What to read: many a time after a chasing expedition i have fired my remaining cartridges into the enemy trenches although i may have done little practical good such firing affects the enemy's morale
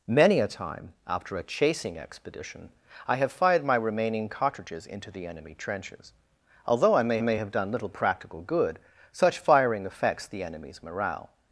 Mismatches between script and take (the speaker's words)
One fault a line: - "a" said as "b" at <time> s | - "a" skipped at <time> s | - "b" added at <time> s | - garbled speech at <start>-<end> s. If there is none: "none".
- "may" added at 7.2 s